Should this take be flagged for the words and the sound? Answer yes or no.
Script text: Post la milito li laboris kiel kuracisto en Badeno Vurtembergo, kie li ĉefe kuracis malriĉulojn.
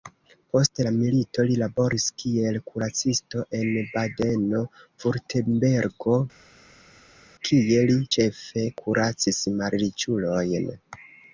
no